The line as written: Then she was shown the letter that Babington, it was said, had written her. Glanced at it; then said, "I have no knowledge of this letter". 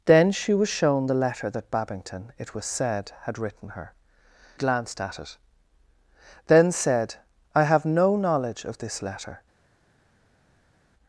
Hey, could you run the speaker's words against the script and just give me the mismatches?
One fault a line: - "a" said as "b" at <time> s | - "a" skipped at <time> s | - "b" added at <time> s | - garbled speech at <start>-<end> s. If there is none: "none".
none